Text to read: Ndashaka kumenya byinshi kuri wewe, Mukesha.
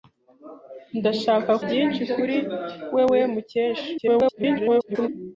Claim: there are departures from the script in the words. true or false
true